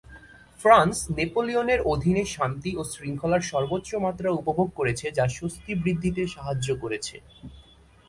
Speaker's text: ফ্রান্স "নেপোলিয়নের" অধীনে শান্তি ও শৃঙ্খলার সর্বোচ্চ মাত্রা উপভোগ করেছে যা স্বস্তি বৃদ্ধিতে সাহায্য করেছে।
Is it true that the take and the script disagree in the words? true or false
false